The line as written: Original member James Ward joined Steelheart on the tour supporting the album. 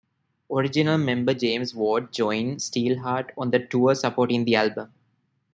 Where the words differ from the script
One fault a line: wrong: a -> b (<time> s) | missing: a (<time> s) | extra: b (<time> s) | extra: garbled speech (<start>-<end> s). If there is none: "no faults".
no faults